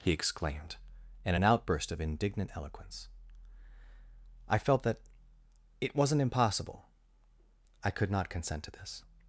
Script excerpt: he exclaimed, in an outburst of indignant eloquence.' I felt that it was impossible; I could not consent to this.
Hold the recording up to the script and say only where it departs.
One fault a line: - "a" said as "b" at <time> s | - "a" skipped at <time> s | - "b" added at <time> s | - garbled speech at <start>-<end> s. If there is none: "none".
- "was" said as "wasn't" at 6.0 s